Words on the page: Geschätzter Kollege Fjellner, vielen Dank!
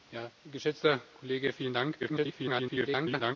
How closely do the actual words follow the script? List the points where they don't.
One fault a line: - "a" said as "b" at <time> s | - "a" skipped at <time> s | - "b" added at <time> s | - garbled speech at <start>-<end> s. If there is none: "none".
- "Fjellner" skipped at 1.5 s
- garbled speech at 2.0-3.4 s